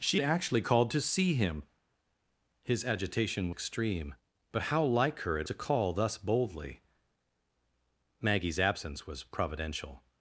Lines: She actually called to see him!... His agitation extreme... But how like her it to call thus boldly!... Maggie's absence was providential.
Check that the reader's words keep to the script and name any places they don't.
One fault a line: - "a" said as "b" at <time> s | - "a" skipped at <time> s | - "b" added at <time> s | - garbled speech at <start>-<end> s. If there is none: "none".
none